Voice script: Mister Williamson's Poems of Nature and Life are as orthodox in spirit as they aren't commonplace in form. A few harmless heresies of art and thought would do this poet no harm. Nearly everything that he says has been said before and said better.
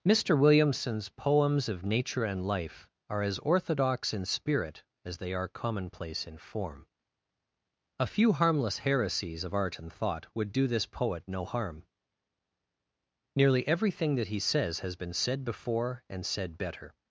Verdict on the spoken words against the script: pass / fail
fail